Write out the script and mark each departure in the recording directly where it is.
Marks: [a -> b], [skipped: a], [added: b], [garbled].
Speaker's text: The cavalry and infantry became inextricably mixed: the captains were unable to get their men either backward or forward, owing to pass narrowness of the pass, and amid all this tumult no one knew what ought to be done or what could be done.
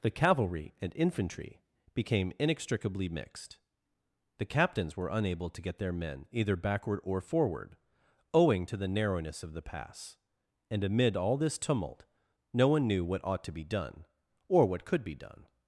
The cavalry and infantry became inextricably mixed: the captains were unable to get their men either backward or forward, owing to [pass -> the] narrowness of the pass, and amid all this tumult no one knew what ought to be done or what could be done.